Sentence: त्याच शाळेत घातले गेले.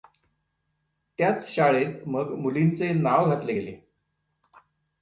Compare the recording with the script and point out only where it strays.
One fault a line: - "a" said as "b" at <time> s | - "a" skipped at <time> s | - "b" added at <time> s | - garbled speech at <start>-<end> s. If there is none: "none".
- "मग मुलींचे नाव" added at 2.1 s